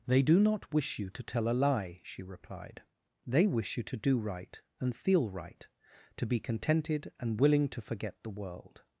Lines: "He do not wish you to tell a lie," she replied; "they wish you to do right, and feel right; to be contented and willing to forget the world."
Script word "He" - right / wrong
wrong